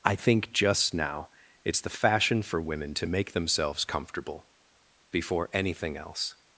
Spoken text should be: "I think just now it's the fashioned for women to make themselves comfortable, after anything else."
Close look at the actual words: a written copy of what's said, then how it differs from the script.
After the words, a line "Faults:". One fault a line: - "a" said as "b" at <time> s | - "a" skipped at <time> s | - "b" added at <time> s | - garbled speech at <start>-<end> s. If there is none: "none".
"I think just now it's the fashion for women to make themselves comfortable, before anything else."
Faults:
- "fashioned" said as "fashion" at 1.9 s
- "after" said as "before" at 5.1 s